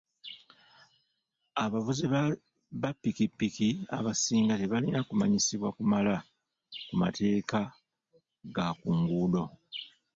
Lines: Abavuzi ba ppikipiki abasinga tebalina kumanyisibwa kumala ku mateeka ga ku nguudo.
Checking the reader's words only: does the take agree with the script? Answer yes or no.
yes